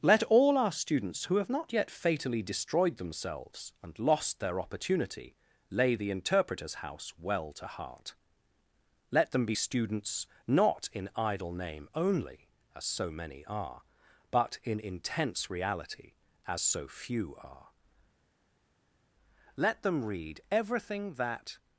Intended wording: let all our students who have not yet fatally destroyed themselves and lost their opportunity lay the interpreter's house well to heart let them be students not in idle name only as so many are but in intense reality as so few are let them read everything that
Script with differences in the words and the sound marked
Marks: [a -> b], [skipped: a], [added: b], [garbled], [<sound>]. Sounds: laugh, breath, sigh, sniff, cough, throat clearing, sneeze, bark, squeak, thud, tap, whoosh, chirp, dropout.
let all our students who have not yet fatally destroyed themselves and lost their opportunity lay the interpreter's house well to heart let them be students not in idle name only as so many are but in intense reality as so few are let them read everything that